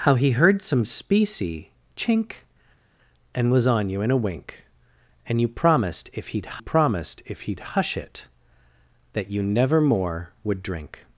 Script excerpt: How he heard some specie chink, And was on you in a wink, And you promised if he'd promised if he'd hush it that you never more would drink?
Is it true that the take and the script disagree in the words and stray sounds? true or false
false